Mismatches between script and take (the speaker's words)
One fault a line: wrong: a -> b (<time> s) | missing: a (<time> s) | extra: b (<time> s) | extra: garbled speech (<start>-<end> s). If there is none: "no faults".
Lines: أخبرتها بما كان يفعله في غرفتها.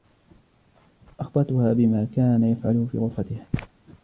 no faults